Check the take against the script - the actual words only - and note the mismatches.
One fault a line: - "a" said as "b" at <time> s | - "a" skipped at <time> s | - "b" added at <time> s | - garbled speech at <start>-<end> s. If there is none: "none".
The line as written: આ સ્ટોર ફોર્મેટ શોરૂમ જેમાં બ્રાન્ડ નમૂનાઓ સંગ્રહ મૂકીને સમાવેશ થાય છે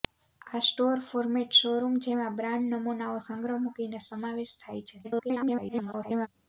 - garbled speech at 5.0-6.3 s